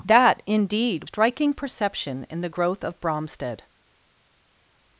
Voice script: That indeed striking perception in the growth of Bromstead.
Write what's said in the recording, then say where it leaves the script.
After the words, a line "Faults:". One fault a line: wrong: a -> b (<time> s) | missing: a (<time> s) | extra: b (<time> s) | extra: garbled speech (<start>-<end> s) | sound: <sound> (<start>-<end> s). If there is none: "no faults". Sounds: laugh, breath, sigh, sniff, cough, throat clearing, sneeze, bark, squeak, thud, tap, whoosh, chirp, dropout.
That indeed striking perception in the growth of Bromstead.
Faults:
no faults